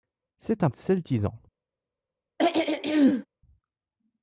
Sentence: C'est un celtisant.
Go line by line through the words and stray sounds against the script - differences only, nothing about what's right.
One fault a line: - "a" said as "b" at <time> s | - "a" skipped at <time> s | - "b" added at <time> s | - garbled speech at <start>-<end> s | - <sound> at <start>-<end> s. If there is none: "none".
- throat clearing at 2.4-3.3 s